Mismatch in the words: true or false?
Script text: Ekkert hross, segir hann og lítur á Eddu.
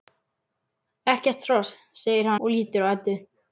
true